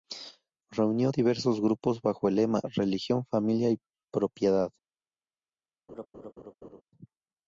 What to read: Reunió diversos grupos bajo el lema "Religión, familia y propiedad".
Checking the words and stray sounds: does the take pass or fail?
fail